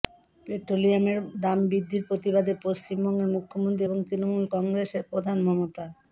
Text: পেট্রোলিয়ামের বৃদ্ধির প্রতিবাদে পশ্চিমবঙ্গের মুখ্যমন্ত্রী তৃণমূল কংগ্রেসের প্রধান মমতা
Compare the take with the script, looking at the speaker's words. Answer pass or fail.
fail